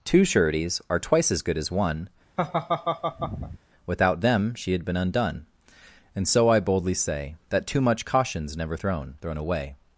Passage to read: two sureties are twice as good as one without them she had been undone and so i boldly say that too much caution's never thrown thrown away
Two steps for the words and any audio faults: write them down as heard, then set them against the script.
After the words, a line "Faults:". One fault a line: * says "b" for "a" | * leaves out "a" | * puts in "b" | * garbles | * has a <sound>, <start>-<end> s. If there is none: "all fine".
two sureties are twice as good as one without them she had been undone and so i boldly say that too much caution's never thrown thrown away
Faults:
* has a laugh, 2.4-3.6 s